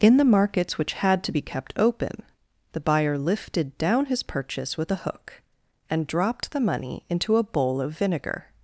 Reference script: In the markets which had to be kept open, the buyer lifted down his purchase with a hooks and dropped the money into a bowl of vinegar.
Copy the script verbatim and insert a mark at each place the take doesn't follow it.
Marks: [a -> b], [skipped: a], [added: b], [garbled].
In the markets which had to be kept open, the buyer lifted down his purchase with a [hooks -> hook] and dropped the money into a bowl of vinegar.